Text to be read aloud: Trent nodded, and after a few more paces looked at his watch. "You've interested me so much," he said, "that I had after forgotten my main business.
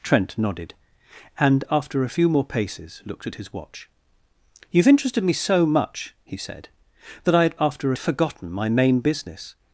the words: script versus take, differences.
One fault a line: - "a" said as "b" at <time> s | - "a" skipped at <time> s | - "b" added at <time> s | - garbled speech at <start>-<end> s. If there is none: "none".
none